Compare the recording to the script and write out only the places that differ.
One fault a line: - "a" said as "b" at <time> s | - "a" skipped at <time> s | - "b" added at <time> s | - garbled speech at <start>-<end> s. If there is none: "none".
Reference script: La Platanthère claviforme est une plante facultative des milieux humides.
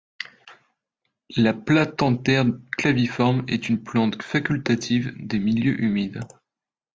none